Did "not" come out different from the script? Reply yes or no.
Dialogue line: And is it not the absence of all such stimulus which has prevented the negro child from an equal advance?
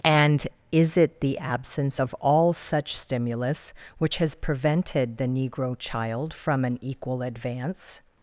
yes